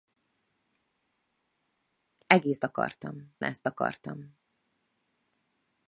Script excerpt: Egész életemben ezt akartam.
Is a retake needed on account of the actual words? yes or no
yes